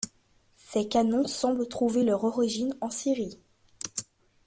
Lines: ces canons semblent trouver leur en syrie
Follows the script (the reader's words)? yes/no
no